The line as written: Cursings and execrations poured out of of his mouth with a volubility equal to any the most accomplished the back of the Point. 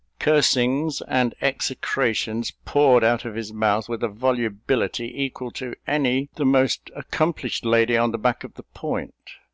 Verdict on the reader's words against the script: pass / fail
fail